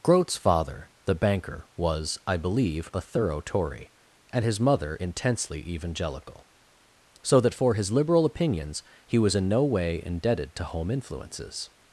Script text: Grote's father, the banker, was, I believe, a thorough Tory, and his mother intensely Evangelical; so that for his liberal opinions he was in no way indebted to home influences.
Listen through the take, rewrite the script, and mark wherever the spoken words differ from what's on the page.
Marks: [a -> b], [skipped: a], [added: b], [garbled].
Grote's father, the banker, was, I believe, a thorough Tory, and his mother intensely Evangelical; so that for his liberal opinions he was in no way indebted to home influences.